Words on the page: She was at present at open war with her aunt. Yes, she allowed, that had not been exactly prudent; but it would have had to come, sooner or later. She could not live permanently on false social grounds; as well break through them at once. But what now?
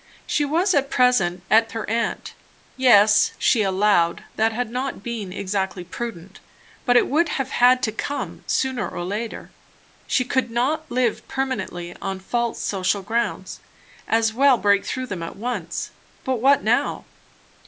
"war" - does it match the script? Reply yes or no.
no